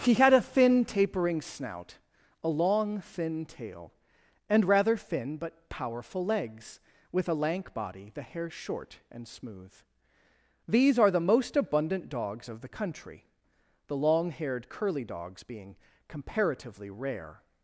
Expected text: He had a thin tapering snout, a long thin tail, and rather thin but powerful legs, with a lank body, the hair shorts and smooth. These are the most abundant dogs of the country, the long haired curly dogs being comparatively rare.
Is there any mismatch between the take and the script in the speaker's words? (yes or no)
yes